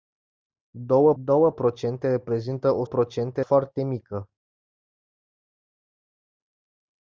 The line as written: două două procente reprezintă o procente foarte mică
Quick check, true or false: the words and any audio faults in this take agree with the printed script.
true